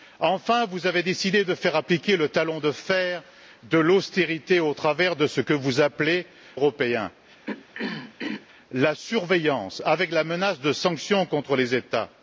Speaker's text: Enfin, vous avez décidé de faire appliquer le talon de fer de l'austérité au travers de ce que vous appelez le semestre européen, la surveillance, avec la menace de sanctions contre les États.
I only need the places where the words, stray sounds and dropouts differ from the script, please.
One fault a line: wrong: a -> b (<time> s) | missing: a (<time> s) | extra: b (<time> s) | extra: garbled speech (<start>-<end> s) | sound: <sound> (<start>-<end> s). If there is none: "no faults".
missing: le semestre (6.2 s)
sound: throat clearing (7.5-8.5 s)